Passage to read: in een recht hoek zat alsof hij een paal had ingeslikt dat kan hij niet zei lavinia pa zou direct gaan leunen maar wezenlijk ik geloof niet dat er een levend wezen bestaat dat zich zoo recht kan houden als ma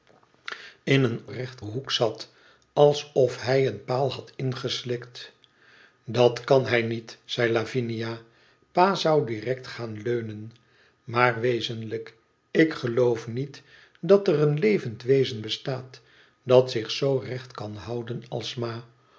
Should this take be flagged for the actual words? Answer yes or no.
no